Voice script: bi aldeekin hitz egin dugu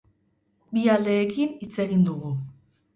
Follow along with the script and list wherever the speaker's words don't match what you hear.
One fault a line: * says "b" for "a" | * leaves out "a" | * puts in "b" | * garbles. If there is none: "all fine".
all fine